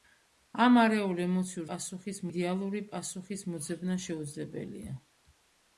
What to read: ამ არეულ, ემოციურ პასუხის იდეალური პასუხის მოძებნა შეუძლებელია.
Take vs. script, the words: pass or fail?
pass